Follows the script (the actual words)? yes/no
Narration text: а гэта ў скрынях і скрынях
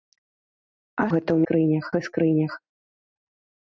yes